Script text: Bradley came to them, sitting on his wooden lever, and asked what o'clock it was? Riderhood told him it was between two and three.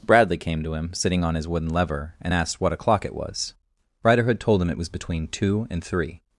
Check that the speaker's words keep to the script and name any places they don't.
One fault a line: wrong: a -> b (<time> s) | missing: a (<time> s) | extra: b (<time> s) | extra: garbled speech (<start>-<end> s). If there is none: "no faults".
wrong: them -> him (0.7 s)